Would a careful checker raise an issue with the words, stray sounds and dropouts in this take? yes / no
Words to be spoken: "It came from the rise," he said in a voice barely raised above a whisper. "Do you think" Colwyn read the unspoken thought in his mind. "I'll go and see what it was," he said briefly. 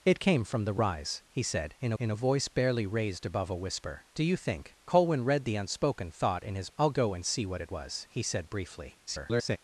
yes